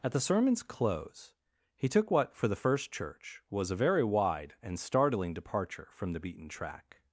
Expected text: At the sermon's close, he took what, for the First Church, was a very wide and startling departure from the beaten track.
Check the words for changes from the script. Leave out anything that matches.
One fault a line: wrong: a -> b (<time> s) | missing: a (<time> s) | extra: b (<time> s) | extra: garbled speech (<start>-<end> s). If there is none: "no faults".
no faults